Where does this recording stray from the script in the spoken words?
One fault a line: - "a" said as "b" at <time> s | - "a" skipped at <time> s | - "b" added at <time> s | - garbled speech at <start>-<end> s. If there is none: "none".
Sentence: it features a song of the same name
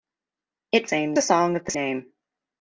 - "features" said as "same" at 0.8 s
- "same" skipped at 1.7 s